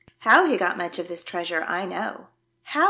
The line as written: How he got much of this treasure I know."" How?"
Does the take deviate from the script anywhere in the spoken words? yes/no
no